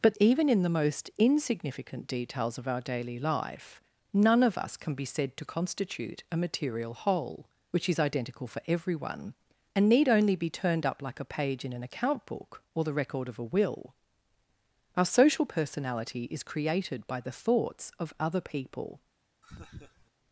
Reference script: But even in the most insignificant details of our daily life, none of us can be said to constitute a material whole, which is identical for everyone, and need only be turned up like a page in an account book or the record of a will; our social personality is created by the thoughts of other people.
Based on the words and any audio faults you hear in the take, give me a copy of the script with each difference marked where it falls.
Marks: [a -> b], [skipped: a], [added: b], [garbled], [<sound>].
But even in the most insignificant details of our daily life, none of us can be said to constitute a material whole, which is identical for everyone, and need only be turned up like a page in an account book or the record of a will; our social personality is created by the thoughts of other people. [laugh]